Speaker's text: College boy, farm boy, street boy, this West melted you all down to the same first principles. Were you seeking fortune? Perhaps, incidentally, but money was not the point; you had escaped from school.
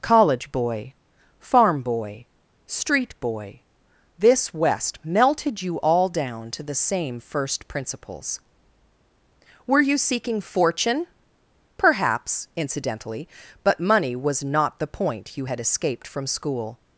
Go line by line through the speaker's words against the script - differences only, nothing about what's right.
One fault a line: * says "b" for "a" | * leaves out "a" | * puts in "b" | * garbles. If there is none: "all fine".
all fine